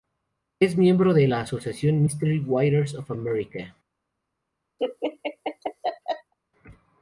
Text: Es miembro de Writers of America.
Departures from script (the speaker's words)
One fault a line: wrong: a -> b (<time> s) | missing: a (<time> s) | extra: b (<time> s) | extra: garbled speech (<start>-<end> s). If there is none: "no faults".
extra: la asociación Mystery (1.3 s)